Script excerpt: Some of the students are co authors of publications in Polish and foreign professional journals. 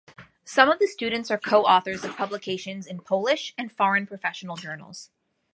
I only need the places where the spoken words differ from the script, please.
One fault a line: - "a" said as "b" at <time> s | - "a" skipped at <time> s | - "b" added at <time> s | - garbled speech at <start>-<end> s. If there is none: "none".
none